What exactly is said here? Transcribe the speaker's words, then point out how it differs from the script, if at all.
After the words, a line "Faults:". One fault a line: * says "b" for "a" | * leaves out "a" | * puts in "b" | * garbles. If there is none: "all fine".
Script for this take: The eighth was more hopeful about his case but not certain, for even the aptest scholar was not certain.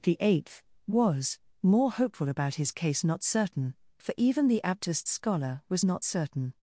The eighth was more hopeful about his case not certain, for even the aptest scholar was not certain.
Faults:
* leaves out "but"